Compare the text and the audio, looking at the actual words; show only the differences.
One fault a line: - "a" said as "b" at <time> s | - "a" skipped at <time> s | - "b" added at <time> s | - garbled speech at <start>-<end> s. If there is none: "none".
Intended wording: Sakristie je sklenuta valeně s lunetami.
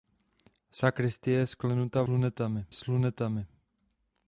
- "valeně" said as "lunetami" at 2.1 s